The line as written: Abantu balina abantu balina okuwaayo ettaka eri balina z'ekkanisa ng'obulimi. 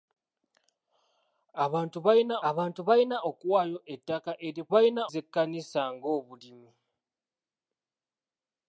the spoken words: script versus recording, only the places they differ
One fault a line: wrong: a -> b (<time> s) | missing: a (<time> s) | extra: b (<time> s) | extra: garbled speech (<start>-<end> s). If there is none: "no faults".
no faults